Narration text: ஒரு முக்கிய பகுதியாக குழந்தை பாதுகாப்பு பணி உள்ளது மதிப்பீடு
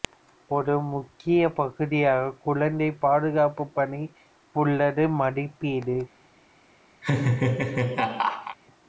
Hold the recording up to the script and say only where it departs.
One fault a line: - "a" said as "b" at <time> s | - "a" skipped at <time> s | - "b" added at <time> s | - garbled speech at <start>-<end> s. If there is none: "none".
none